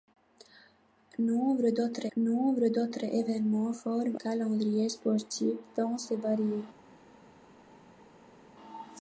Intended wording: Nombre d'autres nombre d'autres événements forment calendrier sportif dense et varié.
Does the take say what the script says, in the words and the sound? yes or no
yes